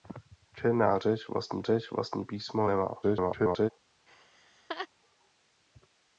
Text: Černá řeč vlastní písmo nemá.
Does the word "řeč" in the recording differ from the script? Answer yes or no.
no